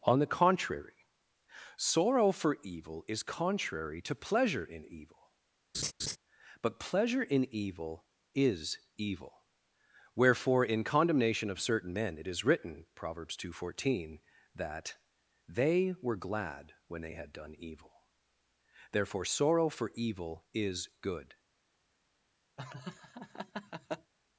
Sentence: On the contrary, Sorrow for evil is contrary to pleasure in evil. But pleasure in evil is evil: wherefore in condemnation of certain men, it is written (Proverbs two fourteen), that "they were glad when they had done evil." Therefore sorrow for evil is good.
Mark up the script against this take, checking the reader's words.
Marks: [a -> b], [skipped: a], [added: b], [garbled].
On the contrary, Sorrow for evil is contrary to pleasure in evil. But pleasure in evil is evil: wherefore in condemnation of certain men, it is written (Proverbs two fourteen), that "they were glad when they had done evil." Therefore sorrow for evil is good.